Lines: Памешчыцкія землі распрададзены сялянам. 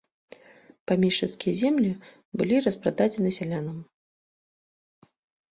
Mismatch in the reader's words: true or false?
true